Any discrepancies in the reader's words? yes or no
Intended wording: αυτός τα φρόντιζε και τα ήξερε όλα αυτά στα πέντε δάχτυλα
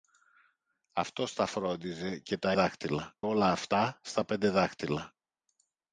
yes